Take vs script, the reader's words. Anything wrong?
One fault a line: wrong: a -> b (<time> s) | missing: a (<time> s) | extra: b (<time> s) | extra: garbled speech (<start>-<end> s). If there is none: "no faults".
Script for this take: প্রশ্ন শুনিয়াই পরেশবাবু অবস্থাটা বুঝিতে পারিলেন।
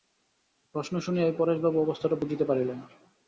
no faults